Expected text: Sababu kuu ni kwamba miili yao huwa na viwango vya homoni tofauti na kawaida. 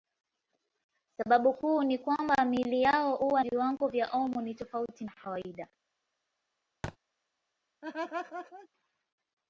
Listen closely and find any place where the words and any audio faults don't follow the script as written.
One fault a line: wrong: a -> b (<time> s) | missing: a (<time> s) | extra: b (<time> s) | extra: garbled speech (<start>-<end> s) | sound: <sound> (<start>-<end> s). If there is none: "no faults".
missing: na (3.4 s)
sound: thud (6.8-7.0 s)
sound: laugh (7.8-8.7 s)